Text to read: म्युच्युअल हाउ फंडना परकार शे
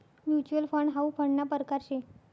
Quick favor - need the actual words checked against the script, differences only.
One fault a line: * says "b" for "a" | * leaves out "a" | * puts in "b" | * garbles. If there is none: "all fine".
* puts in "फंड"